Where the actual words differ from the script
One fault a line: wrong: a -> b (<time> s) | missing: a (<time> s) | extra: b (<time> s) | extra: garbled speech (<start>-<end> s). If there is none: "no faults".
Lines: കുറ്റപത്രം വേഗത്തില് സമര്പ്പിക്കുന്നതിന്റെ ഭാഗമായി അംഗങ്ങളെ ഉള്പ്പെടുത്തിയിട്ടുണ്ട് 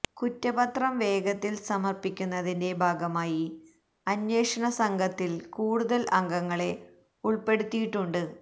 extra: അന്വേഷണ സംഘത്തില് കൂടുതല് (4.1 s)